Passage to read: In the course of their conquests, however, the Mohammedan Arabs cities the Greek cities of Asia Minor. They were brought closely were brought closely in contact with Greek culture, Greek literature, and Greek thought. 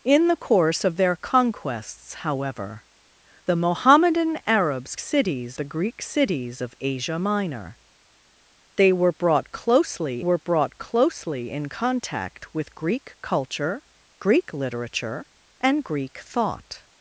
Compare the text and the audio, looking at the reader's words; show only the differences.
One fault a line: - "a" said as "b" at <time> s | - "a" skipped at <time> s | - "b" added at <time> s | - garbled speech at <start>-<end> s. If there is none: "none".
none